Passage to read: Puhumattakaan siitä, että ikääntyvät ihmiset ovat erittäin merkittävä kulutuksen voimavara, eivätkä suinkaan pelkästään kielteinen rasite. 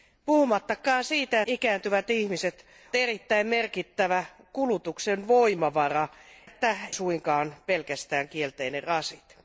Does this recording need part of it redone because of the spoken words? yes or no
yes